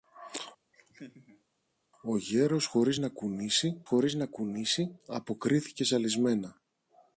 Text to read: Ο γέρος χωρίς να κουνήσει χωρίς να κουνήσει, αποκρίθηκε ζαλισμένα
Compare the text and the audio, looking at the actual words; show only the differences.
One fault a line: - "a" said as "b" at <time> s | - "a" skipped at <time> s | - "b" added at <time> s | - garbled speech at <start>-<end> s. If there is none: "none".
none